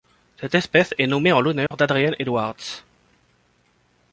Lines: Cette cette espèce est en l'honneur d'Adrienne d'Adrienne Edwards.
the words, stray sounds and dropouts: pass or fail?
fail